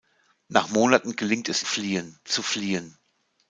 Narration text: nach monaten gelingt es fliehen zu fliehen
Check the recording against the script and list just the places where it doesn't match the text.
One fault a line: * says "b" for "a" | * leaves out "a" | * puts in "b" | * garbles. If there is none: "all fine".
all fine